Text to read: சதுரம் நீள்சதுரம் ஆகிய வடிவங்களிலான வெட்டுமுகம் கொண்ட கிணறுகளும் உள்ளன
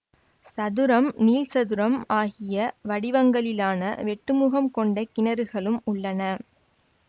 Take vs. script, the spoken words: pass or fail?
pass